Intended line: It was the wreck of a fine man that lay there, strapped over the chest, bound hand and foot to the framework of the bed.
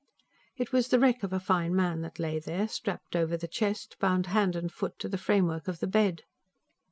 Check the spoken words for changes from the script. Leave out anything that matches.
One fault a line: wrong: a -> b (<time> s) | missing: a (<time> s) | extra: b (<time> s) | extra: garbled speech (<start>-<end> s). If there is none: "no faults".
no faults